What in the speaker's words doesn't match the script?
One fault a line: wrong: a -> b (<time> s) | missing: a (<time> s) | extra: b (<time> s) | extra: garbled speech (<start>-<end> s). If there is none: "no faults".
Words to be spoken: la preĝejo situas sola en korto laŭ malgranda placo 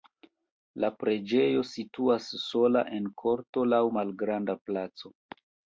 no faults